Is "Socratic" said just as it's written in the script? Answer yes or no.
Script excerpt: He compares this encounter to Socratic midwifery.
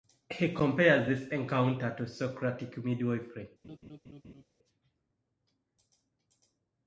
yes